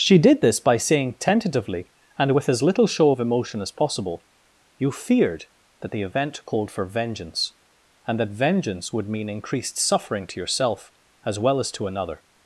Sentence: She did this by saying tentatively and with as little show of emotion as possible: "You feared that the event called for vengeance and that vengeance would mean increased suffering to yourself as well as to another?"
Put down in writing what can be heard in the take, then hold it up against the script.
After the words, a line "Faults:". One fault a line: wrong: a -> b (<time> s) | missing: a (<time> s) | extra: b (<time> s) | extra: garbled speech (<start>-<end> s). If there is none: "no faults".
She did this by saying tentatively and with as little show of emotion as possible: "You feared that the event called for vengeance and that vengeance would mean increased suffering to yourself as well as to another?"
Faults:
no faults